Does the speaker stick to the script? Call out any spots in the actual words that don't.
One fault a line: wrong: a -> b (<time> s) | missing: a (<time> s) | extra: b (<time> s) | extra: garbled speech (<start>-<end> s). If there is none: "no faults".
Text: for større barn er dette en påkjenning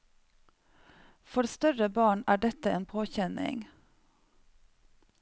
no faults